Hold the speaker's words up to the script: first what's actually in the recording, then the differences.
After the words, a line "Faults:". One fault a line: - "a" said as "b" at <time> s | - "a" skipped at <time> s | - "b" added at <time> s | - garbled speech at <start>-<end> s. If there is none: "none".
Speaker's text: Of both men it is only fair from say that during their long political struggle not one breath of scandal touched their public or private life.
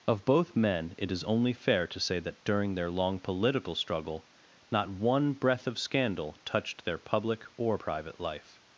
Of both men it is only fair to say that during their long political struggle not one breath of scandal touched their public or private life.
Faults:
- "from" said as "to" at 1.9 s